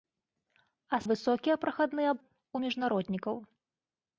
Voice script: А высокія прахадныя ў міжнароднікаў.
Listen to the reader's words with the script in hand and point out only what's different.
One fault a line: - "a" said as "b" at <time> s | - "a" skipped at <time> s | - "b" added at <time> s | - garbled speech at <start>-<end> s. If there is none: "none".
none